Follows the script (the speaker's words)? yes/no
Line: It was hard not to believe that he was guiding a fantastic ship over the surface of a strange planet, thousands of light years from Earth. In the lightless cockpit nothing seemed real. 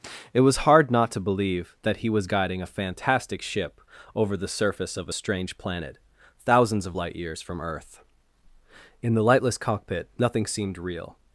yes